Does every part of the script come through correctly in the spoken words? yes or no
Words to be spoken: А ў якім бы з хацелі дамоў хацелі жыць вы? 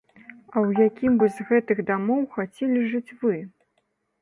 no